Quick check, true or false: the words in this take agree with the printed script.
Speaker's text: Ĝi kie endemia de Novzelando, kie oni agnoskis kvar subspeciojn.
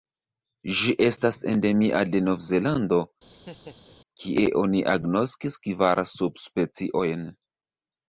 false